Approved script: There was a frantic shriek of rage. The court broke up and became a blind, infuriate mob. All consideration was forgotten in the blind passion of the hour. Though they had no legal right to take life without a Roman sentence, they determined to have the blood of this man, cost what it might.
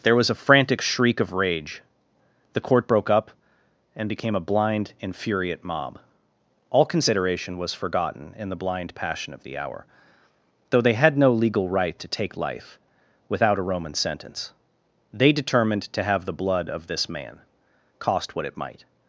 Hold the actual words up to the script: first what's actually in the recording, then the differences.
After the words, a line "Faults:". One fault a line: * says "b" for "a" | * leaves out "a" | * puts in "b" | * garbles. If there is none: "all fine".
There was a frantic shriek of rage. The court broke up and became a blind, infuriate mob. All consideration was forgotten in the blind passion of the hour. Though they had no legal right to take life without a Roman sentence, they determined to have the blood of this man, cost what it might.
Faults:
all fine